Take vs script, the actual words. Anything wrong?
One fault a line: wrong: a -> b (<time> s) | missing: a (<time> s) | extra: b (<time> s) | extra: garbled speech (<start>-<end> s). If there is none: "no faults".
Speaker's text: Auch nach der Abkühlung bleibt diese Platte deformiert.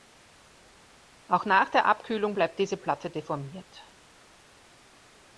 no faults